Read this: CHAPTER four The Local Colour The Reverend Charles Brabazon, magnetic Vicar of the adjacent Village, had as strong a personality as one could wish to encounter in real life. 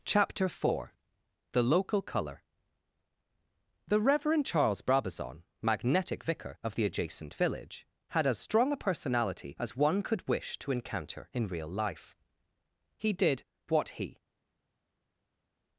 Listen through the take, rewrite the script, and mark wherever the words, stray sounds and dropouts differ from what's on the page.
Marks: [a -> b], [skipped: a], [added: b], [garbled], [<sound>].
CHAPTER four The Local Colour The Reverend Charles Brabazon, magnetic Vicar of the adjacent Village, had as strong a personality as one could wish to encounter in real life. [added: He did what he]